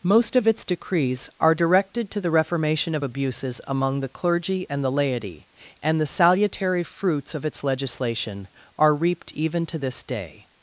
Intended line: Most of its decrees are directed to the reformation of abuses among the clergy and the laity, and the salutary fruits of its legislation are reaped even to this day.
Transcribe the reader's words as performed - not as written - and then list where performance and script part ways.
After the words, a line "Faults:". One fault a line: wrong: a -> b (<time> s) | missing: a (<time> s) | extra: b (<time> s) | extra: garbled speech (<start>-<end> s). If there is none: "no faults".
Most of its decrees are directed to the reformation of abuses among the clergy and the laity, and the salutary fruits of its legislation are reaped even to this day.
Faults:
no faults